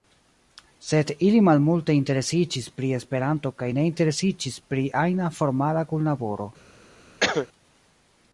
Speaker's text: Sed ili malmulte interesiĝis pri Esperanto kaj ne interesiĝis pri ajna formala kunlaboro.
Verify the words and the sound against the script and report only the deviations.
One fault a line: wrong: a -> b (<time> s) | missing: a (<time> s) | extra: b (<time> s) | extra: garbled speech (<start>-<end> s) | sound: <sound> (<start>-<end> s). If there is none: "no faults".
sound: cough (7.2-7.5 s)